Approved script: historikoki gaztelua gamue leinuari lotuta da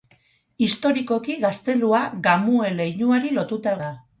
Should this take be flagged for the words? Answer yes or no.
no